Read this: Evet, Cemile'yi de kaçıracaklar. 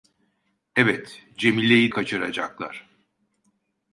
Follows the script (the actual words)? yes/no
no